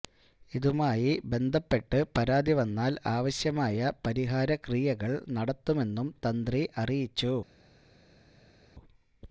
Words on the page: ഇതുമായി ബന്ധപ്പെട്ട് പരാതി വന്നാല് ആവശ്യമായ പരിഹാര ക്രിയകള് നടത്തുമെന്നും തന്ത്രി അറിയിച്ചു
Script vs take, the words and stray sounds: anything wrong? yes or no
no